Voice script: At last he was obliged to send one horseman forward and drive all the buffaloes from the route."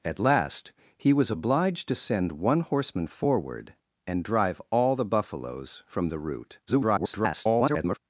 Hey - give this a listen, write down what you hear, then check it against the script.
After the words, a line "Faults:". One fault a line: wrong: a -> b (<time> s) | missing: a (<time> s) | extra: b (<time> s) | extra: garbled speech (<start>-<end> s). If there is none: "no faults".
At last he was obliged to send one horseman forward and drive all the buffaloes from the route." [garbled]
Faults:
extra: garbled speech (6.7-8.0 s)